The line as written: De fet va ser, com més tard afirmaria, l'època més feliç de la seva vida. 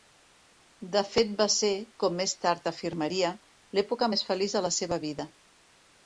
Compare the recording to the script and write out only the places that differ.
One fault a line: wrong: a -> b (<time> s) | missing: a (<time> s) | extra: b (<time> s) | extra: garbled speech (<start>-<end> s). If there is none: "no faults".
no faults